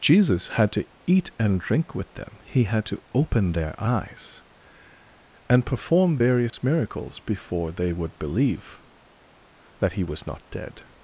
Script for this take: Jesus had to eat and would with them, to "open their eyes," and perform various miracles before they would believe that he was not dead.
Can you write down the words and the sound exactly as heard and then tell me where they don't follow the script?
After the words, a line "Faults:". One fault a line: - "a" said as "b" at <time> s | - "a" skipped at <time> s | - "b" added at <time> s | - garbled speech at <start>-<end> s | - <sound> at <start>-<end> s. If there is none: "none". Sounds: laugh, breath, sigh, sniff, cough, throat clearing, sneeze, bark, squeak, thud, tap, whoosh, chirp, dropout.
Jesus had to eat and drink with them, he had to "open their eyes," and perform various miracles before they would believe that he was not dead.
Faults:
- "would" said as "drink" at 1.6 s
- "he had" added at 2.5 s
- dropout at 6.5-6.5 s